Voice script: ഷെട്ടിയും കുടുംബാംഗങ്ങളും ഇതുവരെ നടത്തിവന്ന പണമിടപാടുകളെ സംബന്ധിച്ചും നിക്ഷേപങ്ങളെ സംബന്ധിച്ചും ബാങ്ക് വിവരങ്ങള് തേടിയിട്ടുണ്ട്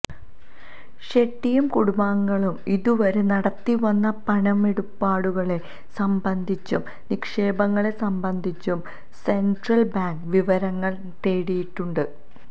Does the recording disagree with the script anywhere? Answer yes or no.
yes